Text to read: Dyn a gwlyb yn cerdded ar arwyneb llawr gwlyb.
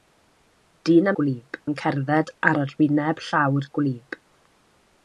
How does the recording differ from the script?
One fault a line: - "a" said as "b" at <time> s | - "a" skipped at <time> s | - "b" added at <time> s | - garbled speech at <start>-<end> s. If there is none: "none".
none